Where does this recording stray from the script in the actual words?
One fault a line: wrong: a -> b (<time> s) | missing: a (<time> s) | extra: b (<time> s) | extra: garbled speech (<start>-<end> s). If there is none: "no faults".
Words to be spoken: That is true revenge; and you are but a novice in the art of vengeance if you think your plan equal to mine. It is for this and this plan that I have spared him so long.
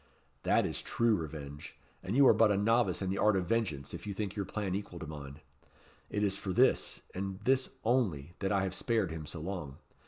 wrong: plan -> only (7.8 s)